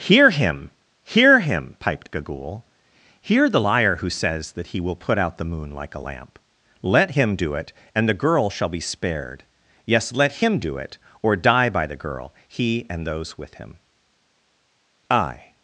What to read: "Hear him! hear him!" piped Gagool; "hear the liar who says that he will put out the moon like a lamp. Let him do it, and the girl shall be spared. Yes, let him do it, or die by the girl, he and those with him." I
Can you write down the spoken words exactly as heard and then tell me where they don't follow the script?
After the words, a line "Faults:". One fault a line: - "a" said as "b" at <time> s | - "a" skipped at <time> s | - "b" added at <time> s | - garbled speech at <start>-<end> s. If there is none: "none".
"Hear him! hear him!" piped Gagool; "hear the liar who says that he will put out the moon like a lamp. Let him do it, and the girl shall be spared. Yes, let him do it, or die by the girl, he and those with him." I
Faults:
none